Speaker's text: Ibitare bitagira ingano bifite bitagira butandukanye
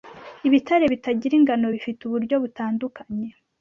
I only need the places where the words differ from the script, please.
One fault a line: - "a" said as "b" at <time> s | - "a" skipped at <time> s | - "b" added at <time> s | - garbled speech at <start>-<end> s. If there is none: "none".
- "bitagira" said as "uburyo" at 2.0 s